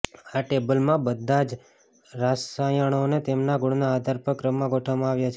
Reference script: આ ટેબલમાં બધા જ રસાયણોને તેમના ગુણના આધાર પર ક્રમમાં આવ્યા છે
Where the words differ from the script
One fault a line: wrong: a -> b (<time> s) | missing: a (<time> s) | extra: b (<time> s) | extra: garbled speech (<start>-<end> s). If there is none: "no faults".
extra: ગોઠવવામાં (4.7 s)